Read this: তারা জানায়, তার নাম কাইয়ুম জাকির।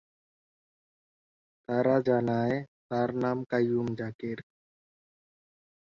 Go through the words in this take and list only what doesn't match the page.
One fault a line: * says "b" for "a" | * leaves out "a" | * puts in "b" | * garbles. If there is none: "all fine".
all fine